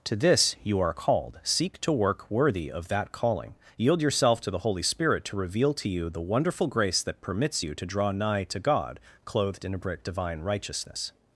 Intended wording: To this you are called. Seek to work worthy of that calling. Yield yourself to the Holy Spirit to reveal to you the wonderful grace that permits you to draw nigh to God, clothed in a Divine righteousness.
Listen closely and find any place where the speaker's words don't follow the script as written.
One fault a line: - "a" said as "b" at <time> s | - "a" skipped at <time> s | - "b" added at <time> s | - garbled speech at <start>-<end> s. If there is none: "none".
none